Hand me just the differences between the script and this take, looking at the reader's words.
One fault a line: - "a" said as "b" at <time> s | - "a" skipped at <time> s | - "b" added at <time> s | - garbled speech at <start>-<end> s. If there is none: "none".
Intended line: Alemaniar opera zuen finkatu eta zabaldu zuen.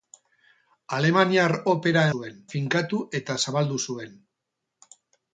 none